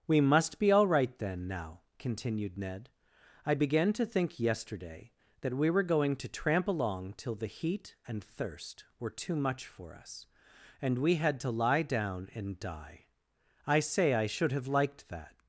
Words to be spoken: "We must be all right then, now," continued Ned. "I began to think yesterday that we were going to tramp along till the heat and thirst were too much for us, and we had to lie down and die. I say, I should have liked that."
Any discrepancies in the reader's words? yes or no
no